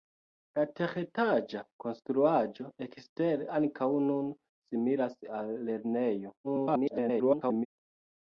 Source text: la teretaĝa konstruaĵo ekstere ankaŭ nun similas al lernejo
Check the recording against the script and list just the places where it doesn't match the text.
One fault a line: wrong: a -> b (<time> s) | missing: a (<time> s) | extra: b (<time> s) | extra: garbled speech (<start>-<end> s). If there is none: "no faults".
extra: garbled speech (6.4-7.7 s)